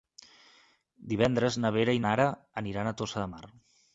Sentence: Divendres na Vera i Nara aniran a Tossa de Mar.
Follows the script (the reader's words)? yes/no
yes